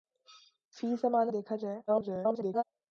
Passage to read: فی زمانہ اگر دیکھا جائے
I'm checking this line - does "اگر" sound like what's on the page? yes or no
no